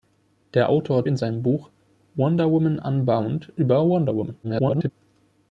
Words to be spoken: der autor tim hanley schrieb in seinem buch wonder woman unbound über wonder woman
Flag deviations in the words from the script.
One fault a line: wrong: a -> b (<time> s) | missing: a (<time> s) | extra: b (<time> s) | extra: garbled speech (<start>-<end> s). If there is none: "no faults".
missing: tim hanley schrieb (1.1 s)
extra: garbled speech (4.4-4.9 s)